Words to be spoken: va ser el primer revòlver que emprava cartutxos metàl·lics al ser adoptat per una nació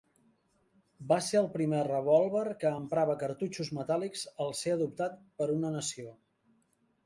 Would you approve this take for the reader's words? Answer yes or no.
yes